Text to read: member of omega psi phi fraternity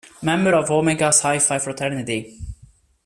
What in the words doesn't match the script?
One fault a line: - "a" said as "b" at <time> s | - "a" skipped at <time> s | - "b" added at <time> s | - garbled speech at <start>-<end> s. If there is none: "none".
none